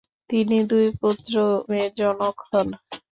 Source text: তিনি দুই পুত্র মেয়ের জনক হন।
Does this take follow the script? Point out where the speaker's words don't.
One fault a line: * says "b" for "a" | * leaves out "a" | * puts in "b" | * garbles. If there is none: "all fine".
all fine